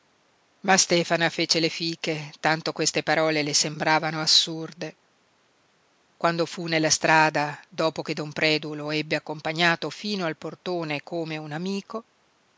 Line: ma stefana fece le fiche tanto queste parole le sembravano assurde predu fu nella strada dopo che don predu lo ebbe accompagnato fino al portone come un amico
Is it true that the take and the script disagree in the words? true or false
true